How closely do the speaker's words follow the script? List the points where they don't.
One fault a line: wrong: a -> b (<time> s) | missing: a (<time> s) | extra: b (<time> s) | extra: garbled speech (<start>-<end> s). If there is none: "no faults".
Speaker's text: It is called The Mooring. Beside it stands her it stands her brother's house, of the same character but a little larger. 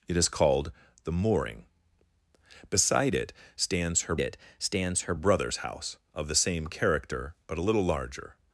no faults